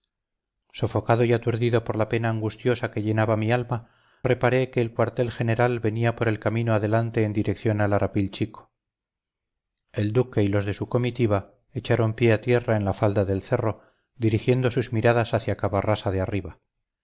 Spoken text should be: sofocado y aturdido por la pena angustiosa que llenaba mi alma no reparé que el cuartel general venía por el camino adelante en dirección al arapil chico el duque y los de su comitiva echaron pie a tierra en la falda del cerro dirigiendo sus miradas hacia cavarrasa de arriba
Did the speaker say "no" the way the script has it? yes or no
no